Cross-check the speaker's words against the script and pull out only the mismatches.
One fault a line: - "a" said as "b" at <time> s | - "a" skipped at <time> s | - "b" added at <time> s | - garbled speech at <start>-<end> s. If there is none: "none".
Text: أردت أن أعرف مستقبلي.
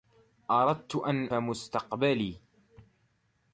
- "أعرف" skipped at 1.3 s